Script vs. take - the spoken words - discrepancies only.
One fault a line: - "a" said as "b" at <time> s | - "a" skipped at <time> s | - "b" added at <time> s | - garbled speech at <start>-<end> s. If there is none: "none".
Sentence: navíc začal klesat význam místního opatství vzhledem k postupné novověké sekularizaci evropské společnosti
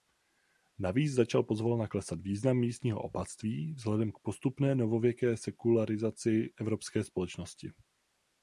- "pozvolna" added at 1.4 s